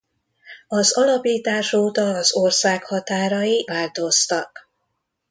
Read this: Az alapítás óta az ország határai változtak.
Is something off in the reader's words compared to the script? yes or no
no